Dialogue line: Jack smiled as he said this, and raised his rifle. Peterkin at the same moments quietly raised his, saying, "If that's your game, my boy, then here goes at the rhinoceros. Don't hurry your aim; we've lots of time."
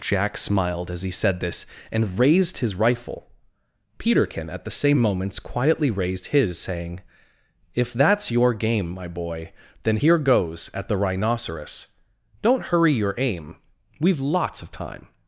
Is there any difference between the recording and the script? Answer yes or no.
no